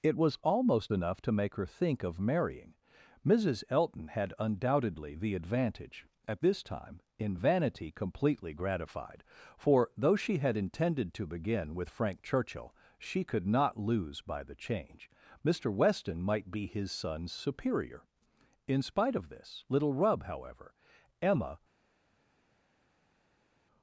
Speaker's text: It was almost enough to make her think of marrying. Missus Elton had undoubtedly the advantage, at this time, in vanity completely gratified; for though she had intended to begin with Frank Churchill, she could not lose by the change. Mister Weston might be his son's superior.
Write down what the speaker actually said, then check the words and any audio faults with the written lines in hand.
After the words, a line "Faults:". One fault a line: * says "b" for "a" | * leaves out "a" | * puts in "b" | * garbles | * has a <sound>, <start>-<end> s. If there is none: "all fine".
It was almost enough to make her think of marrying. Missus Elton had undoubtedly the advantage, at this time, in vanity completely gratified; for though she had intended to begin with Frank Churchill, she could not lose by the change. Mister Weston might be his son's superior. In spite of this little rub, however, Emma
Faults:
* puts in "In spite of this little rub however Emma"